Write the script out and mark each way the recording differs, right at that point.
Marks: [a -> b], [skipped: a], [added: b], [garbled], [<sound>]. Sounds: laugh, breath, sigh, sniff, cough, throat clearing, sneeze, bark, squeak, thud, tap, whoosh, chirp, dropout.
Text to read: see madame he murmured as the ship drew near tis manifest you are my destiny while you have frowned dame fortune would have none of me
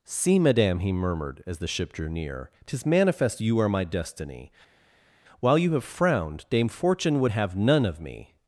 see madame he murmured as the ship drew near tis manifest you are my destiny while you have frowned dame fortune would have none of me